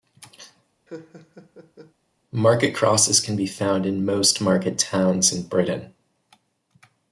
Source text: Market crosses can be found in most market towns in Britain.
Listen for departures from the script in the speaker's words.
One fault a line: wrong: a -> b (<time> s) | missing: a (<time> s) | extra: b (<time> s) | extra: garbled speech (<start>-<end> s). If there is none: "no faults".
no faults